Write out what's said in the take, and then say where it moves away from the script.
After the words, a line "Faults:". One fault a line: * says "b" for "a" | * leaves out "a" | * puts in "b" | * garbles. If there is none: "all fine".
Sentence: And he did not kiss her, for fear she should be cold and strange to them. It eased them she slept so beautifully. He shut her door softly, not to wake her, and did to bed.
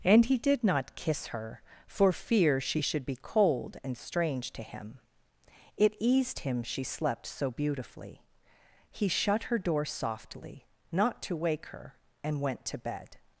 And he did not kiss her, for fear she should be cold and strange to him. It eased him she slept so beautifully. He shut her door softly, not to wake her, and went to bed.
Faults:
* says "him" for "them"
* says "him" for "them"
* says "went" for "did"